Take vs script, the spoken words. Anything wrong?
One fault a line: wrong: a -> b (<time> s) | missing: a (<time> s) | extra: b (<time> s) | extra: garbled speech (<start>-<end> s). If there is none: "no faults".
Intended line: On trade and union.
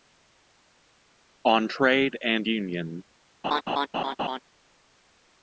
no faults